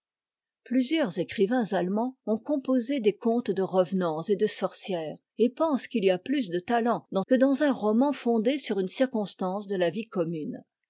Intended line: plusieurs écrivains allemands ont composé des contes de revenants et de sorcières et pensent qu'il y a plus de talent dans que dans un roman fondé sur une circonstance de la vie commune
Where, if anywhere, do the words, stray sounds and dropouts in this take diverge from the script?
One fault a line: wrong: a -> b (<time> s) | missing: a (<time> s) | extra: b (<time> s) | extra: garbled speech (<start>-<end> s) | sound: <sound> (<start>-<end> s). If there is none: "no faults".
no faults